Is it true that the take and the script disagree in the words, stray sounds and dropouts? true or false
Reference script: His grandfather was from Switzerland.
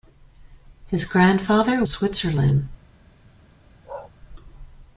true